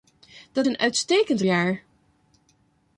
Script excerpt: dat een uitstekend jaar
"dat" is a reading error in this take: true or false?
false